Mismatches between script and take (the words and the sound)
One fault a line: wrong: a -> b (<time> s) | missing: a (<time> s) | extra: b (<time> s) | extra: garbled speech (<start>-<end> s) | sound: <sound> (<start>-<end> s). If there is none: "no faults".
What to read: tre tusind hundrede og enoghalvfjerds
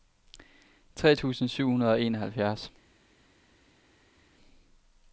extra: syv (1.5 s)